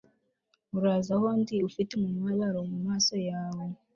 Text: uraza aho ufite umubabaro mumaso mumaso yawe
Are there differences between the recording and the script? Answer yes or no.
yes